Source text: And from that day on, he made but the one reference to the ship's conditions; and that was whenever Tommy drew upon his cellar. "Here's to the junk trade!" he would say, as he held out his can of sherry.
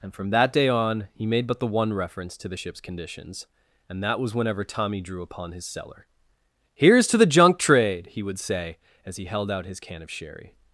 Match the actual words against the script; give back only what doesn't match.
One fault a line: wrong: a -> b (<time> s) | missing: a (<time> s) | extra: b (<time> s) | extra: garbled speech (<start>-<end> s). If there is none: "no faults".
no faults